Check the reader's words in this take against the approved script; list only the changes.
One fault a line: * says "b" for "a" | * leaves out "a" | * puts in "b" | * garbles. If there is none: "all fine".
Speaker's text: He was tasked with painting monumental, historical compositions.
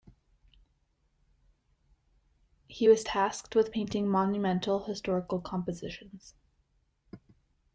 all fine